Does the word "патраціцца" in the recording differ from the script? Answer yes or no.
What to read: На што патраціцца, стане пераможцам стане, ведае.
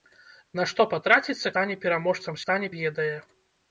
no